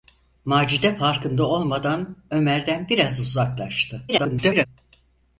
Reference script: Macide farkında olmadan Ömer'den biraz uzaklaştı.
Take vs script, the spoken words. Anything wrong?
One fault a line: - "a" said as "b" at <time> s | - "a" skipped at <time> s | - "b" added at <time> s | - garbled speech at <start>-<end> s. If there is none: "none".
- garbled speech at 4.1-4.7 s